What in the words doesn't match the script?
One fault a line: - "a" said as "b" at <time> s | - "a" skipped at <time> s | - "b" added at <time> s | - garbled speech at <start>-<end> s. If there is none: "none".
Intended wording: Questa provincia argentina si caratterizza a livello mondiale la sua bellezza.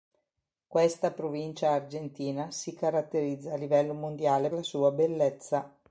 none